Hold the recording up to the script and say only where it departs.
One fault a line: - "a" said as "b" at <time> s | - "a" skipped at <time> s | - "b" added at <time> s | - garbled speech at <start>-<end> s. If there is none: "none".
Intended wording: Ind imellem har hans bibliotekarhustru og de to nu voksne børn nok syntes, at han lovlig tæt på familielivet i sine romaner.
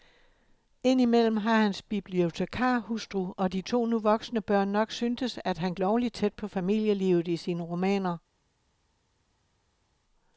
none